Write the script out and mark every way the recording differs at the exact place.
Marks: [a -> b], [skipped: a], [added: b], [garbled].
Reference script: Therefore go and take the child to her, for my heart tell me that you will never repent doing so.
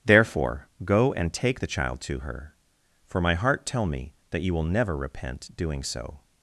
Therefore go and take the child to her, for my heart tell me that you will never repent doing so.